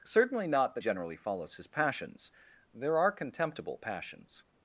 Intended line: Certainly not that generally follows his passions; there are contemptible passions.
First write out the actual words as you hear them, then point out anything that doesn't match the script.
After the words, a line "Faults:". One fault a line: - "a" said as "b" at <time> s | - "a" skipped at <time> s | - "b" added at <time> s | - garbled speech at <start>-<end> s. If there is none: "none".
Certainly not that generally follows his passions; there are contemptible passions.
Faults:
none